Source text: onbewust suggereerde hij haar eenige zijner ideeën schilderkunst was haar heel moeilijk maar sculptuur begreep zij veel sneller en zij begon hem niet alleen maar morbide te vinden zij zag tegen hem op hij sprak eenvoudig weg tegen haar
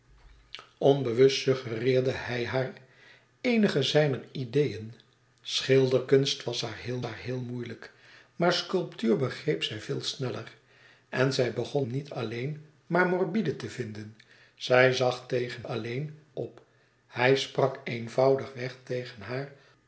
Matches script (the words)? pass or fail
fail